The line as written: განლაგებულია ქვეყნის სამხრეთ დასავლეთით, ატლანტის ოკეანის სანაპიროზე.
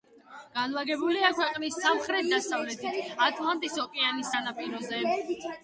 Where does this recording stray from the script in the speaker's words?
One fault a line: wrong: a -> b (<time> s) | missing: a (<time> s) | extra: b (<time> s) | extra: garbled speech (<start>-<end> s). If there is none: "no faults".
no faults